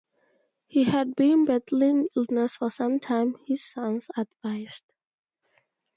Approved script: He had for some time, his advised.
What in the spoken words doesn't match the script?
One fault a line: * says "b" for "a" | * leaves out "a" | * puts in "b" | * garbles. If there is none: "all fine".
* puts in "been battling illness"
* puts in "sons"